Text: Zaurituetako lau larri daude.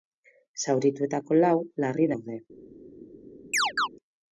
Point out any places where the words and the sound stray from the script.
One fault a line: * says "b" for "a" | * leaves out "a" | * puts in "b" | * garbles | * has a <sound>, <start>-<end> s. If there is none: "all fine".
* has a chirp, 3.5-3.9 s